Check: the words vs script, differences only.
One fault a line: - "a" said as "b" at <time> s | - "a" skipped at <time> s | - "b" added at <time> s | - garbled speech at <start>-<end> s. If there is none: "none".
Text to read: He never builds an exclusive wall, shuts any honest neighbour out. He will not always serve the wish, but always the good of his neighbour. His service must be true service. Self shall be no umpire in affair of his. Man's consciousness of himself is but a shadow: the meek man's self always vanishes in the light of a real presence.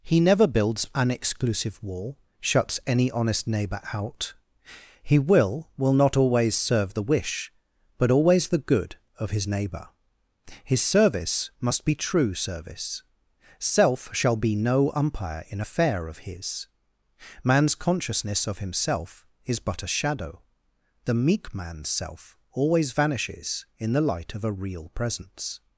- "will" added at 5.8 s